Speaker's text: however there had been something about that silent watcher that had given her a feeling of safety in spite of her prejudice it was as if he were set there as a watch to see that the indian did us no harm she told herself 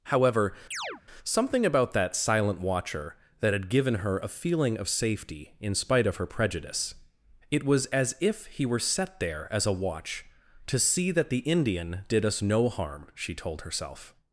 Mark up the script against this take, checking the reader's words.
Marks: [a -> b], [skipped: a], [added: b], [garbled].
however [skipped: there had been] something about that silent watcher that had given her a feeling of safety in spite of her prejudice it was as if he were set there as a watch to see that the indian did us no harm she told herself